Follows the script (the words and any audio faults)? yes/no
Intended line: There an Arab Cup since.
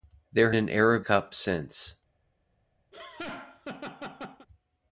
no